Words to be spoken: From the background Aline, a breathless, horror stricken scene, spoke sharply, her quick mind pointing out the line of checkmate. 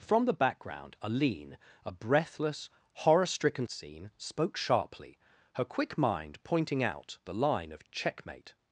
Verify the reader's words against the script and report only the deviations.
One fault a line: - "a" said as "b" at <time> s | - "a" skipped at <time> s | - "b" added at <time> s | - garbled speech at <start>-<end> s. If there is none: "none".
none